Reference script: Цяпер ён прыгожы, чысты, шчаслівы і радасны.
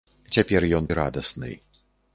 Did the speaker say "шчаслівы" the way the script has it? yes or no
no